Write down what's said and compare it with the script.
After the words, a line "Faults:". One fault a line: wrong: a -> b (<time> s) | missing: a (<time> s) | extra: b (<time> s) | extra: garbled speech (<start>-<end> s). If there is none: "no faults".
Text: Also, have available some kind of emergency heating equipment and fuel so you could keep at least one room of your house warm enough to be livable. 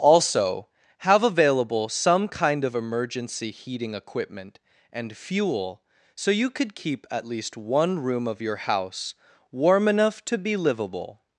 Also, have available some kind of emergency heating equipment and fuel so you could keep at least one room of your house warm enough to be livable.
Faults:
no faults